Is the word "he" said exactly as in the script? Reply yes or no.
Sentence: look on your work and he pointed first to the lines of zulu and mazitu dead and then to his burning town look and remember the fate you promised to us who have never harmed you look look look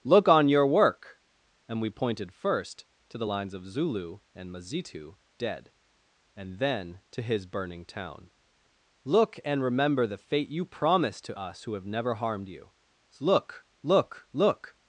no